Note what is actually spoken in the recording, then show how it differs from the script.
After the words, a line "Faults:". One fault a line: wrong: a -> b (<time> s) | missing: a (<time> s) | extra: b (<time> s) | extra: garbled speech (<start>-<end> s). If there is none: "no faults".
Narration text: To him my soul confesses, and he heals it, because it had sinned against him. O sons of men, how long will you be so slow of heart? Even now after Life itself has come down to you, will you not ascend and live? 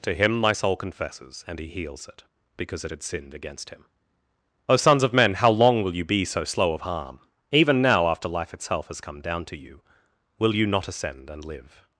To him my soul confesses, and he heals it, because it had sinned against him. O sons of men, how long will you be so slow of harm? Even now after Life itself has come down to you, will you not ascend and live?
Faults:
wrong: heart -> harm (6.8 s)